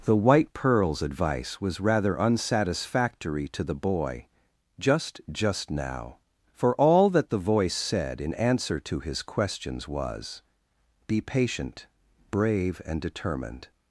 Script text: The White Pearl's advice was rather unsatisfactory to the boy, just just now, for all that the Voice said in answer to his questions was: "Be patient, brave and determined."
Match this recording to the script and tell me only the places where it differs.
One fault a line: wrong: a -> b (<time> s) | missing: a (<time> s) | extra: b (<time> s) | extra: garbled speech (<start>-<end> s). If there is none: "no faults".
no faults